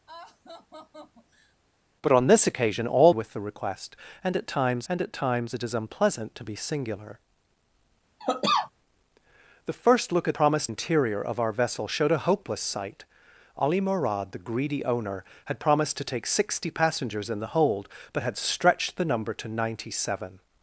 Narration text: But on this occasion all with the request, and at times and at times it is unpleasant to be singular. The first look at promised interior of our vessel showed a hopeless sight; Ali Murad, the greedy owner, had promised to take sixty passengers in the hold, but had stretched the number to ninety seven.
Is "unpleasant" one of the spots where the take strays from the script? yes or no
no